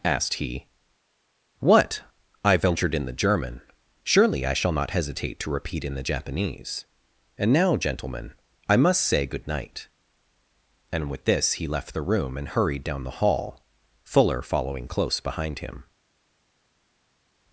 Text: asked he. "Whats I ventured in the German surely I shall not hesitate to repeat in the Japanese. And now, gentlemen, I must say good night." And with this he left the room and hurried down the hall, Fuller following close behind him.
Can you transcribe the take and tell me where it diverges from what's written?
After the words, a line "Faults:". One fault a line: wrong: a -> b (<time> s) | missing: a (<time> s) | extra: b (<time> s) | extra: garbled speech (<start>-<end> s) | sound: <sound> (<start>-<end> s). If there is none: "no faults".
asked he. "What I ventured in the German surely I shall not hesitate to repeat in the Japanese. And now, gentlemen, I must say good night." And with this he left the room and hurried down the hall, Fuller following close behind him.
Faults:
wrong: Whats -> What (1.6 s)